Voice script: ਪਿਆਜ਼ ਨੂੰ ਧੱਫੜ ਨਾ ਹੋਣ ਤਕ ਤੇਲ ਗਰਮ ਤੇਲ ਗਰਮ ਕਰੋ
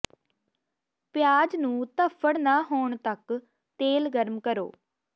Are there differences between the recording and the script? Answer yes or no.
yes